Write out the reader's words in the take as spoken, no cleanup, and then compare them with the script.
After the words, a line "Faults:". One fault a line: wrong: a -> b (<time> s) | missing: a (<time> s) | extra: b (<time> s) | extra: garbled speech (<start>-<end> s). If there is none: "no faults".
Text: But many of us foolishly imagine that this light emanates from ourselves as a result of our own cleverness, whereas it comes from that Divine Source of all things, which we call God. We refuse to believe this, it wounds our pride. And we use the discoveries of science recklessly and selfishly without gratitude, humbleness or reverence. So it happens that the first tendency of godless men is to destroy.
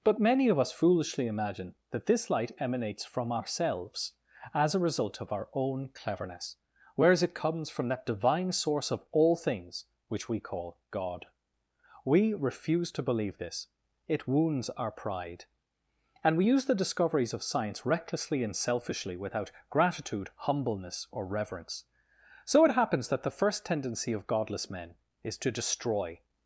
But many of us foolishly imagine that this light emanates from ourselves as a result of our own cleverness, whereas it comes from that Divine Source of all things, which we call God. We refuse to believe this, it wounds our pride. And we use the discoveries of science recklessly and selfishly without gratitude, humbleness or reverence. So it happens that the first tendency of godless men is to destroy.
Faults:
no faults